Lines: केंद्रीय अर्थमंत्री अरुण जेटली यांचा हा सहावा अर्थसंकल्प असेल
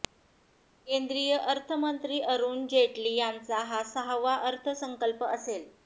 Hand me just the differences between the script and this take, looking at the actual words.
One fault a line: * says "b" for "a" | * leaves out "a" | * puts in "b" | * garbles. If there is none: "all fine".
all fine